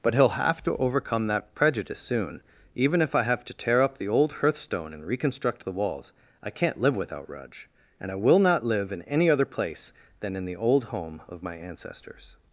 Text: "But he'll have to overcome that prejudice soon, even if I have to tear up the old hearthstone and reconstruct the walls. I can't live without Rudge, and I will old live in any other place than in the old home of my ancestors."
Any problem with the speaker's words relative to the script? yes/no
yes